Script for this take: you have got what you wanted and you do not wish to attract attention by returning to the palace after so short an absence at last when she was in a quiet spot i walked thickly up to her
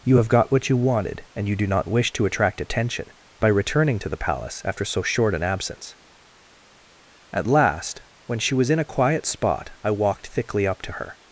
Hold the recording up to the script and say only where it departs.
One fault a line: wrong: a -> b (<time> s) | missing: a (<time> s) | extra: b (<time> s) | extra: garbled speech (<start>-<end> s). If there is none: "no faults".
no faults